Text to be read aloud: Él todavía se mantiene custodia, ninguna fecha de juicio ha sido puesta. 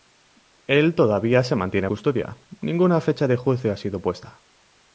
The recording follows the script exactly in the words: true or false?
true